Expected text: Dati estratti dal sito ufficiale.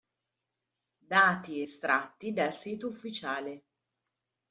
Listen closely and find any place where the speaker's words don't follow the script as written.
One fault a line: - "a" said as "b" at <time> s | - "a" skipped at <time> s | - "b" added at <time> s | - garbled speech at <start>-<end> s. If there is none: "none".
none